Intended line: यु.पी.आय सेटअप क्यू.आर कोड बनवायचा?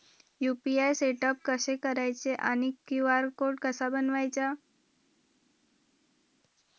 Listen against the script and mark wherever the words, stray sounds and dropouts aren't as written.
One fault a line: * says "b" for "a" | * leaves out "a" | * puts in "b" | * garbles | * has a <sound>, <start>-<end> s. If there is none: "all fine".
* puts in "कसे करायचे आणि"
* puts in "कसा"